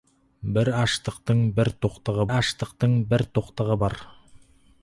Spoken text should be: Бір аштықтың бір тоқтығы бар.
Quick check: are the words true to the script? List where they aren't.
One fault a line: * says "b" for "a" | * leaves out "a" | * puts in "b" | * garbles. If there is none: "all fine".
* puts in "аштықтың бір тоқтығы"